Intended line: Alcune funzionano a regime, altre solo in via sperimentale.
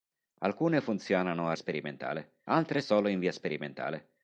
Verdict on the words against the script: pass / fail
fail